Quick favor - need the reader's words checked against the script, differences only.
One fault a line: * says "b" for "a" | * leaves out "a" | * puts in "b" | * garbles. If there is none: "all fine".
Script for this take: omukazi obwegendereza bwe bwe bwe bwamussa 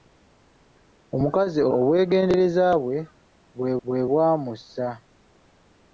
all fine